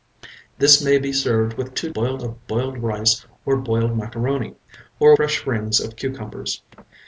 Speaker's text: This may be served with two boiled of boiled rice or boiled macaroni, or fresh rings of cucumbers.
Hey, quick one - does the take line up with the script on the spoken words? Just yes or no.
yes